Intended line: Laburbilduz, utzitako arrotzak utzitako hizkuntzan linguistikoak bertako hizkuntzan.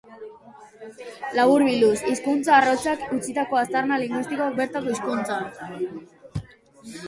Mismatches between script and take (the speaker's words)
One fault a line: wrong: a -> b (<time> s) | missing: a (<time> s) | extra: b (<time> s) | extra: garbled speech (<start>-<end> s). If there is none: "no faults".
wrong: utzitako -> hizkuntza (2.1 s)
wrong: hizkuntzan -> aztarna (3.6 s)